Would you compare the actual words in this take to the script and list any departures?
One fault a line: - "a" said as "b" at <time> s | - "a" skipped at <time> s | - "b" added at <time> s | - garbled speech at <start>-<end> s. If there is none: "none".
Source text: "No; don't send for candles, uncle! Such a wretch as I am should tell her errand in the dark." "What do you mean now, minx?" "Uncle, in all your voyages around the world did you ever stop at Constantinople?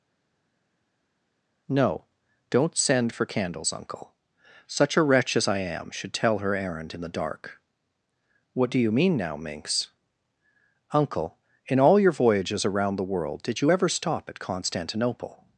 none